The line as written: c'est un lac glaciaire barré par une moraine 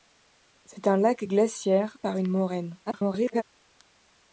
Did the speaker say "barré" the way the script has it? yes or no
no